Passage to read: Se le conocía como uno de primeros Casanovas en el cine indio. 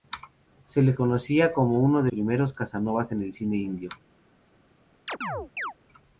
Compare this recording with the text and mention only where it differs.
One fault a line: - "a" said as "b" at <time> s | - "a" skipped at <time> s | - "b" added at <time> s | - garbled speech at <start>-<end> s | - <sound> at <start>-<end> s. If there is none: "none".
- chirp at 5.1-5.7 s